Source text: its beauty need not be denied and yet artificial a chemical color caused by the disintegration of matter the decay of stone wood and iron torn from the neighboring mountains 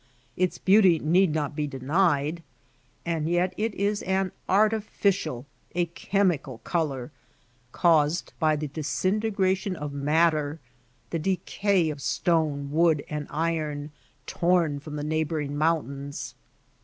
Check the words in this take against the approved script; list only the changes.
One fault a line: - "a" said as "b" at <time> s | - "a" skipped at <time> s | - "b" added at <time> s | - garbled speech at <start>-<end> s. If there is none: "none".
- "it is an" added at 3.5 s